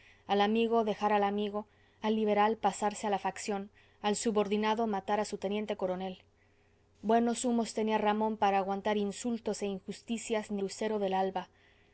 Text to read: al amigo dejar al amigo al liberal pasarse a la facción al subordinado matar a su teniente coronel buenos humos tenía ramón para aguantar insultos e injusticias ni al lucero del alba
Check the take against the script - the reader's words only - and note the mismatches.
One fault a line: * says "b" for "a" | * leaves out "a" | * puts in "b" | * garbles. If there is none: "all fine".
* leaves out "al"